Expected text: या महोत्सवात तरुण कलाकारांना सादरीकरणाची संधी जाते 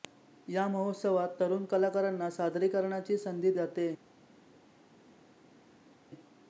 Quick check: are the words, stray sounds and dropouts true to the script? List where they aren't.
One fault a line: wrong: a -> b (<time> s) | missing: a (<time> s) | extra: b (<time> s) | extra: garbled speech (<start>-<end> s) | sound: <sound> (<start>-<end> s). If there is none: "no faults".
no faults